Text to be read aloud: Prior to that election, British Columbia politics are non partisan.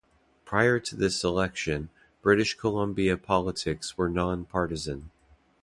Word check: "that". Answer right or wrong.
wrong